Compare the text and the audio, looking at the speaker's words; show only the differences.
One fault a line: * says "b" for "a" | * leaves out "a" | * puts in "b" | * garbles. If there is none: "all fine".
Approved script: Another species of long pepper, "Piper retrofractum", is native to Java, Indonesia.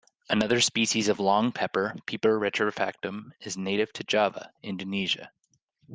all fine